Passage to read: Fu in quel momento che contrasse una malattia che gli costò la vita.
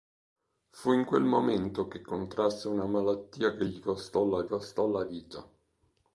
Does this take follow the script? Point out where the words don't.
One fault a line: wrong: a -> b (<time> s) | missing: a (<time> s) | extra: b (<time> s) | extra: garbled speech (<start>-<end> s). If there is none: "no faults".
extra: costò la (4.5 s)